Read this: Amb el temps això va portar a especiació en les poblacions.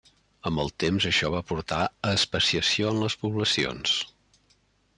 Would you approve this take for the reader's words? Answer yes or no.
yes